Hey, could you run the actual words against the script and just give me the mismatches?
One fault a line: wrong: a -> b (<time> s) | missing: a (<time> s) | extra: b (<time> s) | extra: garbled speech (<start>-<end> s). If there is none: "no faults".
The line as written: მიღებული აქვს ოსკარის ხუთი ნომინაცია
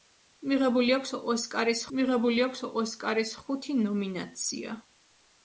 extra: მიღებული აქვს ოსკარის (2.0 s)